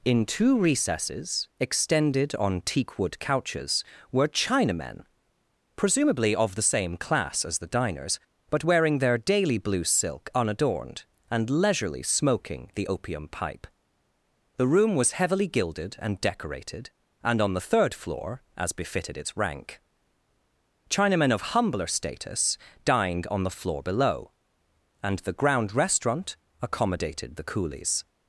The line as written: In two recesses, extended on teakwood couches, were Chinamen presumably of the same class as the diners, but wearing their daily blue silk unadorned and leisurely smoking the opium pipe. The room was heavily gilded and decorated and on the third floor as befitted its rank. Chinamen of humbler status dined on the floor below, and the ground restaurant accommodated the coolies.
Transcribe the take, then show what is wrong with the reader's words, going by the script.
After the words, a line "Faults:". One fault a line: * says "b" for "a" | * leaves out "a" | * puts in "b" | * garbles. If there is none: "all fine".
In two recesses, extended on teakwood couches, were Chinamen presumably of the same class as the diners, but wearing their daily blue silk unadorned and leisurely smoking the opium pipe. The room was heavily gilded and decorated and on the third floor as befitted its rank. Chinamen of humbler status dined on the floor below, and the ground restaurant accommodated the coolies.
Faults:
all fine